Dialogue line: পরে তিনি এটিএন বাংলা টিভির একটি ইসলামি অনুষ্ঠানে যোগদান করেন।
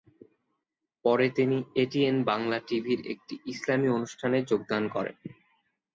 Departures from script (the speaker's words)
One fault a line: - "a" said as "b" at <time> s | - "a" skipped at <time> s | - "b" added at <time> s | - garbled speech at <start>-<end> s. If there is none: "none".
none